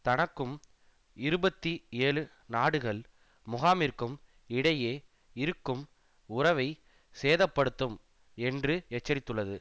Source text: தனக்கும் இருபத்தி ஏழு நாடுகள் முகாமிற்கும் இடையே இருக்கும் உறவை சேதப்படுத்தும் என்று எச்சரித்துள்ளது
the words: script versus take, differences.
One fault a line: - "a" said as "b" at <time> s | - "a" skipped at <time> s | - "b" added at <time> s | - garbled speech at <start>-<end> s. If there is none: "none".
none